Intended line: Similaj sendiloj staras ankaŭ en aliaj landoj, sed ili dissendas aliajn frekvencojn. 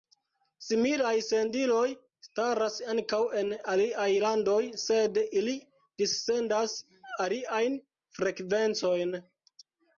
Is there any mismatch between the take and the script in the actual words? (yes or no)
no